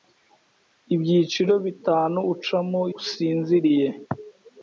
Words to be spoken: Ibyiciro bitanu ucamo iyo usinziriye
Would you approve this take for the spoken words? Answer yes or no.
no